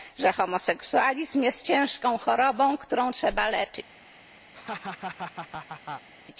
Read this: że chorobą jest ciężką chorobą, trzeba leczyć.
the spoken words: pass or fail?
fail